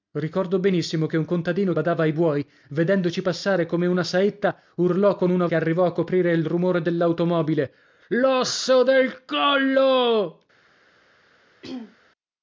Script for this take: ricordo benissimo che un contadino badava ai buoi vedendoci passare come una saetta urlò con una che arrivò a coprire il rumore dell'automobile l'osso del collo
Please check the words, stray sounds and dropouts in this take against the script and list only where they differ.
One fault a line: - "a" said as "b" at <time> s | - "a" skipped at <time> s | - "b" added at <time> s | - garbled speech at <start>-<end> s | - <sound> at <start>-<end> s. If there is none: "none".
- throat clearing at 11.6-12.0 s